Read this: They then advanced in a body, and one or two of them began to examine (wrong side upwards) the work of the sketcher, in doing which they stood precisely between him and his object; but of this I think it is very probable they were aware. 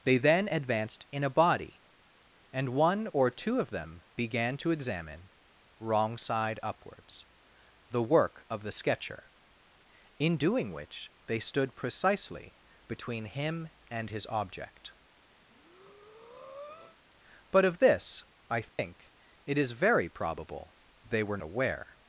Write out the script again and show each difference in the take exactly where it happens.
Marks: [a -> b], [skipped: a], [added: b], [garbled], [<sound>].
They then advanced in a body, and one or two of them began to examine (wrong side upwards) the work of the sketcher, in doing which they stood precisely between him and his object; [breath] but of this I think [dropout] it is very probable they were aware.